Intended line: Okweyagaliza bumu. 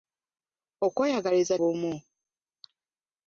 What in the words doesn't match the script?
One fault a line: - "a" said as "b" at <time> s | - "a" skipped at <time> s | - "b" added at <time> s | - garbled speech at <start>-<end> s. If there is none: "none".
none